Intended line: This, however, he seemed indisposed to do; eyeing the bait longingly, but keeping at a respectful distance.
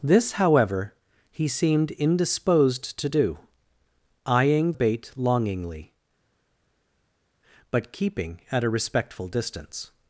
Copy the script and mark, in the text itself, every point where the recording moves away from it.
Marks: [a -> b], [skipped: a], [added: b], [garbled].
This, however, he seemed indisposed to do; eyeing [skipped: the] bait longingly, but keeping at a respectful distance.